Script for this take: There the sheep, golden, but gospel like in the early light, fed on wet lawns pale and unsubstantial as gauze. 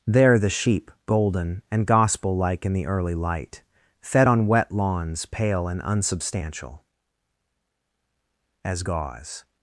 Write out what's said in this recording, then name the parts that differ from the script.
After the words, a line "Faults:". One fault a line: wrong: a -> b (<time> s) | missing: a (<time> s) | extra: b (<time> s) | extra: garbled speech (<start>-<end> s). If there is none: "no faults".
There the sheep, golden, and gospel like in the early light, fed on wet lawns pale and unsubstantial as gauze.
Faults:
wrong: but -> and (1.7 s)